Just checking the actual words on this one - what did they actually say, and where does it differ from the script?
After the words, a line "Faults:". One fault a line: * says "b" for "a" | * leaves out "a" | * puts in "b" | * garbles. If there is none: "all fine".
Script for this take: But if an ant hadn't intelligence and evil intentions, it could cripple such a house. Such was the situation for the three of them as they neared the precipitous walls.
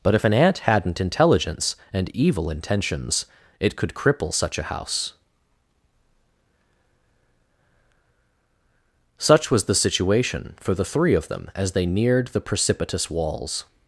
But if an ant hadn't intelligence and evil intentions, it could cripple such a house. Such was the situation for the three of them as they neared the precipitous walls.
Faults:
all fine